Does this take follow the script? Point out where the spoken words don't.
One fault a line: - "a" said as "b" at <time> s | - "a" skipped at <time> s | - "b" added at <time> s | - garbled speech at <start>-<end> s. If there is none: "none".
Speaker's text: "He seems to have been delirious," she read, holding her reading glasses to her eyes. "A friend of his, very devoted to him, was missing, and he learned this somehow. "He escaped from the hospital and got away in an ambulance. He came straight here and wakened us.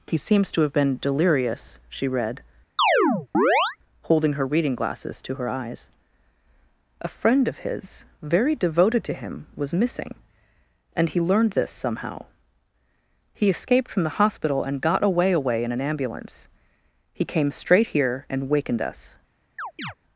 - "away" added at 15.3 s